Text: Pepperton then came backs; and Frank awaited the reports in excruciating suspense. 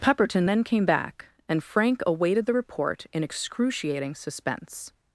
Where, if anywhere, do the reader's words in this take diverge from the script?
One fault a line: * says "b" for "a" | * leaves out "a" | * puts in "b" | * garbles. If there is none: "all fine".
* says "back" for "backs"
* says "report" for "reports"